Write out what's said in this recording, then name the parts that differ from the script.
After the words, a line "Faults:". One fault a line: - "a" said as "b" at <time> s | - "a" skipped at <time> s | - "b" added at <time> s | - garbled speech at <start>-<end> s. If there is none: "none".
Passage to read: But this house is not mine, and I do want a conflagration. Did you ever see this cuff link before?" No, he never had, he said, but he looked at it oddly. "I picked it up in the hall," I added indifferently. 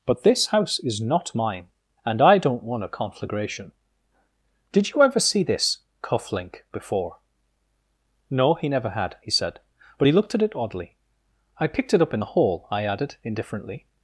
But this house is not mine, and I don't want a conflagration. Did you ever see this cuff link before?" No, he never had, he said, but he looked at it oddly. "I picked it up in the hall," I added indifferently.
Faults:
- "do" said as "don't" at 2.4 s